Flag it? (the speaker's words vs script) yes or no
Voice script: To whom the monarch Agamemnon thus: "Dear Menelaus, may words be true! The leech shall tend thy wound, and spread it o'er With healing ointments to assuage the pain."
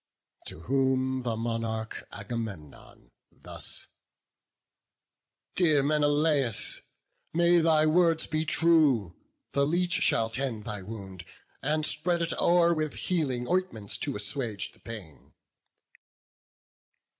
yes